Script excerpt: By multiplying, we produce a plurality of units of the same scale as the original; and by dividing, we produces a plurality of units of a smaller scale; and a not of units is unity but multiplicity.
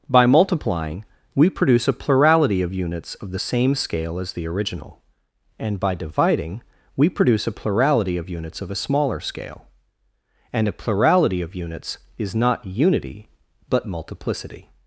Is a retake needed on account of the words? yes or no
yes